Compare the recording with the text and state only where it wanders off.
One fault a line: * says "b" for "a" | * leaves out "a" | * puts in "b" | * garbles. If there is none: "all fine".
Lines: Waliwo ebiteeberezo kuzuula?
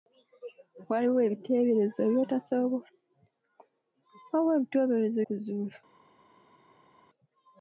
all fine